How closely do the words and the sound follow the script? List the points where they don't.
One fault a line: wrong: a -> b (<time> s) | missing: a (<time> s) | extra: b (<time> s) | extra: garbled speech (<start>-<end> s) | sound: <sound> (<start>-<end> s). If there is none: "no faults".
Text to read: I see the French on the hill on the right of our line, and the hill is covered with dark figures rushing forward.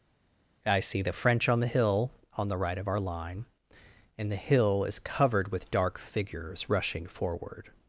no faults